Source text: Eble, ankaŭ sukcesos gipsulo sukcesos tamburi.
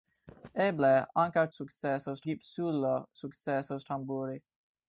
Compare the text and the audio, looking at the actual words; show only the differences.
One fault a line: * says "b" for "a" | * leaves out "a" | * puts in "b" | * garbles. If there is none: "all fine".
all fine